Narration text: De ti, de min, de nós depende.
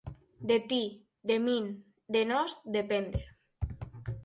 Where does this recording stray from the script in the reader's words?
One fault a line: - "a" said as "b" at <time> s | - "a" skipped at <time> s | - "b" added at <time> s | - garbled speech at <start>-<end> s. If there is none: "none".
none